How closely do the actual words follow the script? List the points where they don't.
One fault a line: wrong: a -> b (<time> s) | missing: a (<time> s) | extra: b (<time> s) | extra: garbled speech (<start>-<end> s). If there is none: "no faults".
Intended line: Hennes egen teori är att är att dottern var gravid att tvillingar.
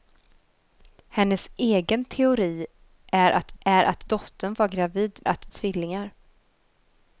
no faults